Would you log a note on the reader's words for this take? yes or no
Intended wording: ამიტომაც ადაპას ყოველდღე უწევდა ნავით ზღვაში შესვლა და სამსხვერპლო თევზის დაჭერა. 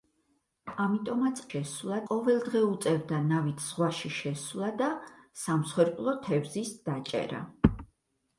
yes